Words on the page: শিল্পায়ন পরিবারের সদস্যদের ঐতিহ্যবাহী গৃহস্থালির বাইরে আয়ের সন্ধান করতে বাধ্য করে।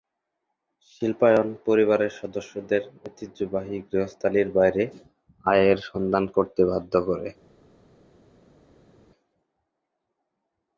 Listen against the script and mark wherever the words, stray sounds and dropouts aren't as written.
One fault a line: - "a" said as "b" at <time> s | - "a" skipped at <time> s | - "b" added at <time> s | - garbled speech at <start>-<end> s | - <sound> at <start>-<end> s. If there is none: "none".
none